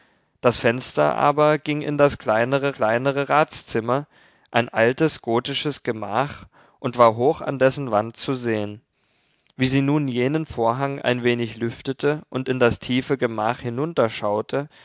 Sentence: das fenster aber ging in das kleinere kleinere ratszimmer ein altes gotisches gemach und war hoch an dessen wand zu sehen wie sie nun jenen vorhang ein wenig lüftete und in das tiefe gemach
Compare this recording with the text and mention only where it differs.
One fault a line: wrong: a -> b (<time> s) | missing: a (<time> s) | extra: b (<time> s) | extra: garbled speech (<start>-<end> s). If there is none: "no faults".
no faults